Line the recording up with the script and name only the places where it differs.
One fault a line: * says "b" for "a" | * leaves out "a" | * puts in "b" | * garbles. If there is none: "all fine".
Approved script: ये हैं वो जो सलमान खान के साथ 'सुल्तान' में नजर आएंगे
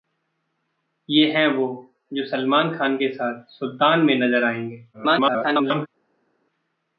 * garbles